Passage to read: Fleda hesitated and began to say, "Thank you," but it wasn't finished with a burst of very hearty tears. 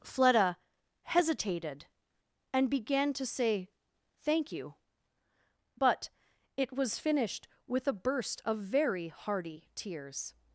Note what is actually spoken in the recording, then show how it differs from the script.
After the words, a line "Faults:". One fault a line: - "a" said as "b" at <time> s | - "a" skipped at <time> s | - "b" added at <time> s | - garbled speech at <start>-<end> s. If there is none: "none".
Fleda hesitated and began to say, "Thank you," but it was finished with a burst of very hearty tears.
Faults:
- "wasn't" said as "was" at 6.7 s